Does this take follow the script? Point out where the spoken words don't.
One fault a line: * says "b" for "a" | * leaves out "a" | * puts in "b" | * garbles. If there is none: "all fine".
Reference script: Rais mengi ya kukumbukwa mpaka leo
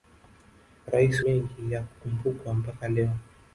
all fine